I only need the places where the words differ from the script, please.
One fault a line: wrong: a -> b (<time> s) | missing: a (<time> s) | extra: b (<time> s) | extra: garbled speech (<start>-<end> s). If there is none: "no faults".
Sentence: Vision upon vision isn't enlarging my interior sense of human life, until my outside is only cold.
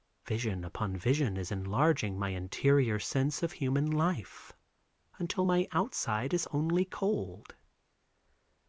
wrong: isn't -> is (1.4 s)